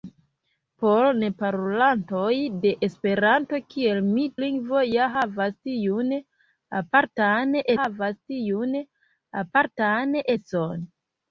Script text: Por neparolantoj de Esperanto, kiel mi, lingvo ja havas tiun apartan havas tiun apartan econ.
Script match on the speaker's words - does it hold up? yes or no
yes